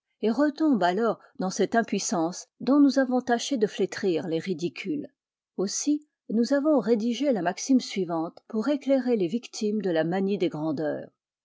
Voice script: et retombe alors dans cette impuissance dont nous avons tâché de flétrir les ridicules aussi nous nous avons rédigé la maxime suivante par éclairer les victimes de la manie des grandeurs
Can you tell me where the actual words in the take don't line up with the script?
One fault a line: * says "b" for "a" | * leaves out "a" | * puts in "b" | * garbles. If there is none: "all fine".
* leaves out "nous"
* says "pour" for "par"